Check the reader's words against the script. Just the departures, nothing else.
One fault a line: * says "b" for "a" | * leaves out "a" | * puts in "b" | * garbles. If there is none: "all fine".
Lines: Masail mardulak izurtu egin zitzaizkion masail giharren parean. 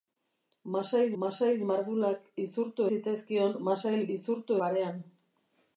* puts in "masail"
* leaves out "egin"
* says "izurtu" for "giharren"